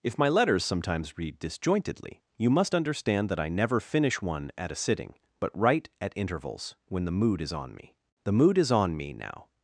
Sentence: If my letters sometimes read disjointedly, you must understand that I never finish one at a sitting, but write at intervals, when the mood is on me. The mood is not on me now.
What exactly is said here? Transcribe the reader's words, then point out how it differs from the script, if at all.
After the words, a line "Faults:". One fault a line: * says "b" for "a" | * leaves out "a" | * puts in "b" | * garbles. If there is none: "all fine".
If my letters sometimes read disjointedly, you must understand that I never finish one at a sitting, but write at intervals, when the mood is on me. The mood is on me now.
Faults:
* leaves out "not"